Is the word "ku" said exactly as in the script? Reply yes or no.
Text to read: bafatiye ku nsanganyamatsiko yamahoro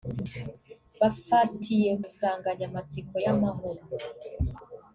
no